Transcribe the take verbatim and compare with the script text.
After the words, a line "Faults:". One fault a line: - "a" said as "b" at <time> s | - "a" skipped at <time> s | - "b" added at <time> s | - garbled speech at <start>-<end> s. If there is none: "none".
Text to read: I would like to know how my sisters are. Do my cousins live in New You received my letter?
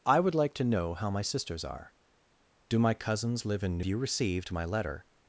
I would like to know how my sisters are. Do my cousins live in New You received my letter?
Faults:
none